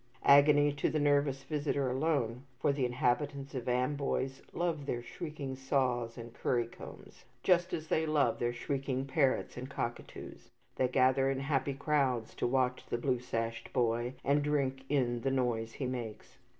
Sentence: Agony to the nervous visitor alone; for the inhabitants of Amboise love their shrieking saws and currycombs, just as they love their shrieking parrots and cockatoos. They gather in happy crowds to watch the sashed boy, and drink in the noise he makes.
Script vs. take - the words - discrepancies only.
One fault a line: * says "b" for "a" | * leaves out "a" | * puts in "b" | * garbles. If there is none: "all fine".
* puts in "blue"